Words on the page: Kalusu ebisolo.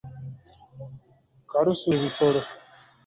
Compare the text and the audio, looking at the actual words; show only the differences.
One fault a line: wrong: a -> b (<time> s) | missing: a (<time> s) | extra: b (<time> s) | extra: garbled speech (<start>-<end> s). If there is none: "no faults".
no faults